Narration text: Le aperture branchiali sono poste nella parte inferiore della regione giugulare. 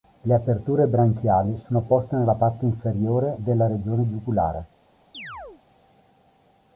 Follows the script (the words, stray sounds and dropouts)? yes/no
no